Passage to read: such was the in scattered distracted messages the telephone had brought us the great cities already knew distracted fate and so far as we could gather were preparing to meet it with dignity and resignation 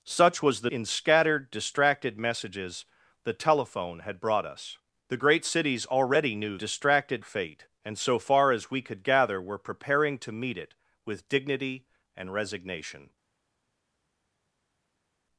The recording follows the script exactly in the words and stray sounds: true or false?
true